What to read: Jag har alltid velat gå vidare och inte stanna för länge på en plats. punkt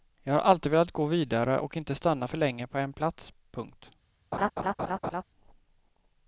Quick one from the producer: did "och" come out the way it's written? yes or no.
yes